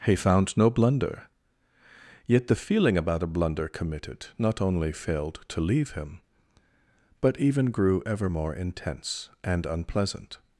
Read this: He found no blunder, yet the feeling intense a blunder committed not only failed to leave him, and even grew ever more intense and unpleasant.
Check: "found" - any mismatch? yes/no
no